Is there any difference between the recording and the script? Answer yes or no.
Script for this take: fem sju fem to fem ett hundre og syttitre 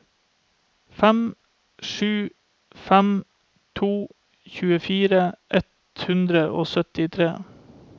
yes